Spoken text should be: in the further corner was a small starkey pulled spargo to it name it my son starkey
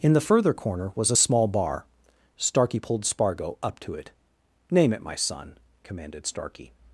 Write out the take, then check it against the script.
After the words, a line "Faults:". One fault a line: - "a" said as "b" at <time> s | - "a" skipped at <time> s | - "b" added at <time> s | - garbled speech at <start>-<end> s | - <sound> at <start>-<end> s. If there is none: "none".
in the further corner was a small bar starkey pulled spargo up to it name it my son commanded starkey
Faults:
- "bar" added at 1.5 s
- "up" added at 3.6 s
- "commanded" added at 5.8 s